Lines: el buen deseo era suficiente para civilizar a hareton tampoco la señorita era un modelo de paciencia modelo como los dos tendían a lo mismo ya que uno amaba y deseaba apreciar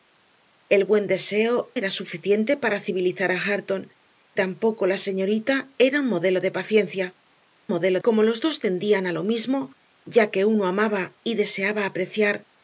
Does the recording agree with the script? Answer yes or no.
yes